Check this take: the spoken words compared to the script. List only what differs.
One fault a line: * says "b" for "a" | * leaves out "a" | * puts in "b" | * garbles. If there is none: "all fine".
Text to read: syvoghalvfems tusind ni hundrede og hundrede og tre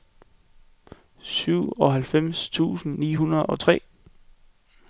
* leaves out "hundrede og"